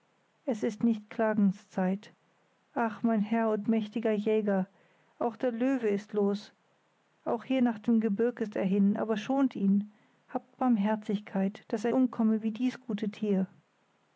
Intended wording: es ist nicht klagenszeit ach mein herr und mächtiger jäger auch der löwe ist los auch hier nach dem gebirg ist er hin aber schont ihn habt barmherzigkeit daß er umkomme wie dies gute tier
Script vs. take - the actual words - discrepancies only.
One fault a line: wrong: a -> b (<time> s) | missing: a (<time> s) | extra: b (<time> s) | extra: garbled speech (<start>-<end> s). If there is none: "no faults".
no faults